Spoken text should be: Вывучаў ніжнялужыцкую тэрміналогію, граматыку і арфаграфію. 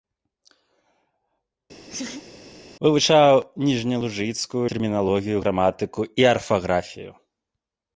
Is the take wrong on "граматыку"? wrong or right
right